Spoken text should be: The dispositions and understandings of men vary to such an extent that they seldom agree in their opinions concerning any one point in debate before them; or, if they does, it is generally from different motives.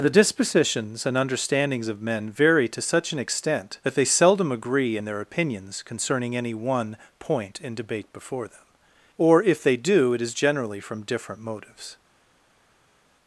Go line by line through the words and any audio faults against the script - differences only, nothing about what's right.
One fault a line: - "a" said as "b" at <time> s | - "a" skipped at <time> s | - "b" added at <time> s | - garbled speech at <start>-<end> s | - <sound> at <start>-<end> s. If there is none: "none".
- "does" said as "do" at 9.8 s